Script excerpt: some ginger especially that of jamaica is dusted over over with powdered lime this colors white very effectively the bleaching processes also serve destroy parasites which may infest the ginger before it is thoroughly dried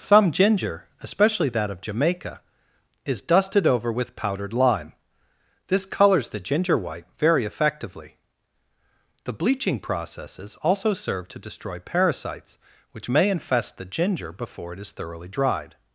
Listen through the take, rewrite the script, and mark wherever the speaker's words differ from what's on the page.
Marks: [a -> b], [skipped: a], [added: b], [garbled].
some ginger especially that of jamaica is dusted over [skipped: over] with powdered lime this colors [added: the ginger] white very effectively the bleaching processes also serve [added: to] destroy parasites which may infest the ginger before it is thoroughly dried